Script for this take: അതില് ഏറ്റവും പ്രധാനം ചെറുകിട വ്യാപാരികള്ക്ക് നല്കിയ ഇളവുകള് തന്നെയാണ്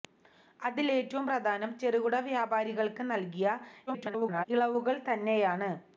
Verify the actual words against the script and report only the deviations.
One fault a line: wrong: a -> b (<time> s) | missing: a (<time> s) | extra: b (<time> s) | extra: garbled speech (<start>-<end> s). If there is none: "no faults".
extra: garbled speech (3.9-4.4 s)